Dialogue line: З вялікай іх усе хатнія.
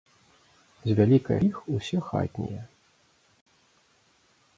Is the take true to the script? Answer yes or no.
yes